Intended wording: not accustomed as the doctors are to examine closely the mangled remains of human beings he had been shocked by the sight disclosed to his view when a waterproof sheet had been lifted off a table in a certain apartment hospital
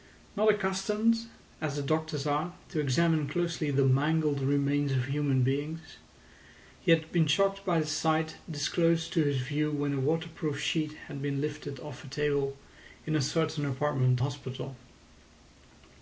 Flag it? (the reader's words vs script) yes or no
no